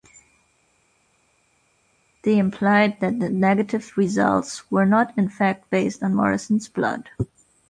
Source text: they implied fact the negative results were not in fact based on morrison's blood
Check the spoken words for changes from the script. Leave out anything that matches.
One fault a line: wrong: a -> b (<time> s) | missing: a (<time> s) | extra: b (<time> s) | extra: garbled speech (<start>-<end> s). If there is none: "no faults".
wrong: fact -> that (3.0 s)